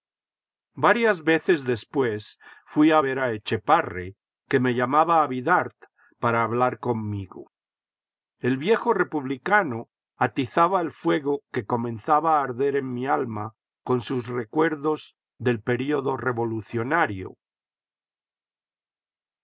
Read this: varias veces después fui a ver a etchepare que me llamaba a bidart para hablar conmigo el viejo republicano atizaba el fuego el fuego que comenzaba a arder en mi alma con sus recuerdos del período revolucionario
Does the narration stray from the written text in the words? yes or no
yes